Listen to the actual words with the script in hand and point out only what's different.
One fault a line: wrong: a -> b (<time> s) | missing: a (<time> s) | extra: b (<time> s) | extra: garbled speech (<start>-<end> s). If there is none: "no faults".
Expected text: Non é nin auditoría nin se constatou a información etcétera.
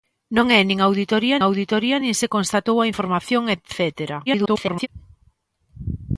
extra: auditoría (1.5 s)
extra: garbled speech (4.3-4.9 s)